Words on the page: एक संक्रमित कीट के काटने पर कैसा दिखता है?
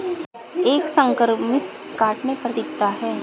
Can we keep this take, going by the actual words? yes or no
no